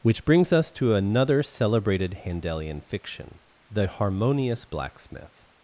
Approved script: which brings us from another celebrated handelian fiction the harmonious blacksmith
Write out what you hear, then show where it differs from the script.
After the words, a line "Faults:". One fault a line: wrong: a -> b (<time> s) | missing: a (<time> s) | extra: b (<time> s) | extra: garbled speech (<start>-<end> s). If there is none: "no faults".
which brings us to another celebrated handelian fiction the harmonious blacksmith
Faults:
wrong: from -> to (0.7 s)